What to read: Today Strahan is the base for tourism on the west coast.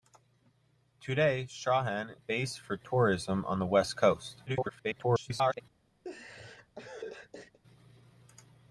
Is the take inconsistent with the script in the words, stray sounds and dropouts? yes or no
yes